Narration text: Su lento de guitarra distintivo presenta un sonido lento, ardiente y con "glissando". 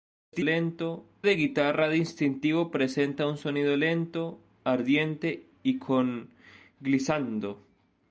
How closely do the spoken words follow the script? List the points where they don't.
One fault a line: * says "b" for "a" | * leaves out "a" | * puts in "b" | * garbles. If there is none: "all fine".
all fine